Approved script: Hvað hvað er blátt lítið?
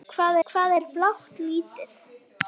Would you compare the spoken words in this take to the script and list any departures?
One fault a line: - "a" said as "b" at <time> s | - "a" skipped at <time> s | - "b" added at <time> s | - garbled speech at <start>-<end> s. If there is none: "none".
none